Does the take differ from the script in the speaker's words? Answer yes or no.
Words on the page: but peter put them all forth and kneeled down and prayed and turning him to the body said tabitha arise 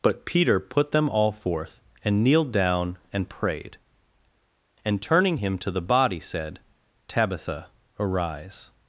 no